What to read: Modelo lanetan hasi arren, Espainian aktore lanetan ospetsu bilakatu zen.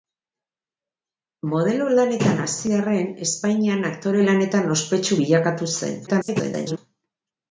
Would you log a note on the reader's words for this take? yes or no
yes